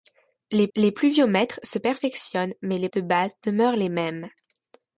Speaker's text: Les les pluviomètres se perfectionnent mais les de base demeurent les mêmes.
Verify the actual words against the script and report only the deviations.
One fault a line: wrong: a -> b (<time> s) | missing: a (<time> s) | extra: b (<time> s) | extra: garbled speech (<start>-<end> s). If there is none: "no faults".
no faults